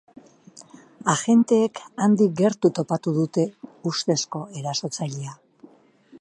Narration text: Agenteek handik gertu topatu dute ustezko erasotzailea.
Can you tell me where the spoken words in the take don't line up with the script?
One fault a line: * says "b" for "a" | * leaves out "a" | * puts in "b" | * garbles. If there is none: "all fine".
all fine